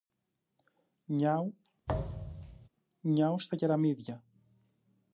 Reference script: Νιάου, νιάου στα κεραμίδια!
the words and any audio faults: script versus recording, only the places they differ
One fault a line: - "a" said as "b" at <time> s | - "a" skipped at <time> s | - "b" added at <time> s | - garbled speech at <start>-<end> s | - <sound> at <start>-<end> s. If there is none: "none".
- thud at 1.9-2.7 s